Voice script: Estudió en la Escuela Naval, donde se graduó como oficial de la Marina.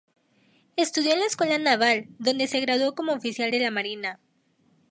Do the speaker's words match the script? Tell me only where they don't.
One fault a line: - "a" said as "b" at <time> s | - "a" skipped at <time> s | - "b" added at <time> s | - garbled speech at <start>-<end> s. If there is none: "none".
none